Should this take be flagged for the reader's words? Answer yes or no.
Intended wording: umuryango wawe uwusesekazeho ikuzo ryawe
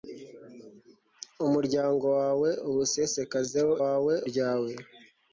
yes